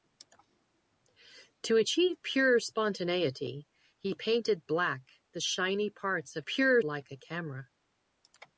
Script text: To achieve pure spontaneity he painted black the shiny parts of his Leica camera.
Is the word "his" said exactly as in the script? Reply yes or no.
no